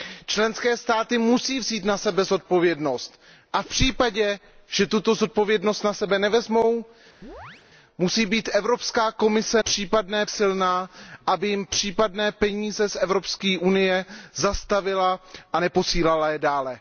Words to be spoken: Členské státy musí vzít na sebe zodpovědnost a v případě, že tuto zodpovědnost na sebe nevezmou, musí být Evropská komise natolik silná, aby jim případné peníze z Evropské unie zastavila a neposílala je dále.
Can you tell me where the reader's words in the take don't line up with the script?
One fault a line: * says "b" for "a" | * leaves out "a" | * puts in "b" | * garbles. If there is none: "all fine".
* says "případné" for "natolik"